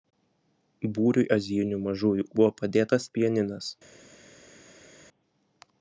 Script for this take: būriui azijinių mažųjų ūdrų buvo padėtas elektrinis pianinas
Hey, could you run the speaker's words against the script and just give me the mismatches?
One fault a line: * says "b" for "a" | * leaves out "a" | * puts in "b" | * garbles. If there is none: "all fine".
* leaves out "ūdrų"
* leaves out "elektrinis"